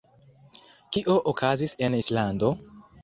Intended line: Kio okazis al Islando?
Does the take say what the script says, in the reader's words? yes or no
no